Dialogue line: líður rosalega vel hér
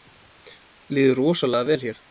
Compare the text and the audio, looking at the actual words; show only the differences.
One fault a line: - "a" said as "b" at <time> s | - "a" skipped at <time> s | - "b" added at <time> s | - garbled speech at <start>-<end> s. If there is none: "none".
none